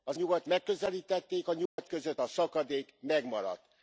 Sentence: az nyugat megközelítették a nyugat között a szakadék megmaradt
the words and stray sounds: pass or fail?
fail